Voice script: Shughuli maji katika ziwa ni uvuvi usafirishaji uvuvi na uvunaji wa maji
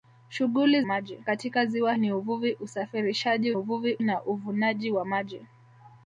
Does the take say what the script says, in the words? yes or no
yes